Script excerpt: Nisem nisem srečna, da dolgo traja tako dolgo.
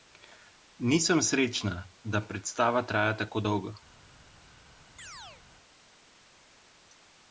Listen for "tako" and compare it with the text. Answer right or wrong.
right